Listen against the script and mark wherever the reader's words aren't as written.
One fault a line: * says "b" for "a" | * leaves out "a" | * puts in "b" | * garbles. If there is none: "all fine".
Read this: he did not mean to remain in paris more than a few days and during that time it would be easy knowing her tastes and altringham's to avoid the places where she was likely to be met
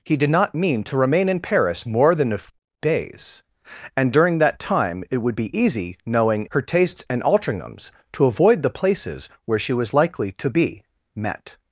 all fine